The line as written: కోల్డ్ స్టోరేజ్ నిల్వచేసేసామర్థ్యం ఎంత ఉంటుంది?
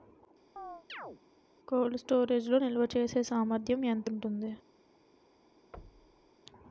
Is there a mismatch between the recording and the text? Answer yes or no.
yes